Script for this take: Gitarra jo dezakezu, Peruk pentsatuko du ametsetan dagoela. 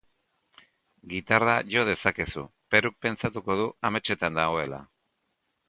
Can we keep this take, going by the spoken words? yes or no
yes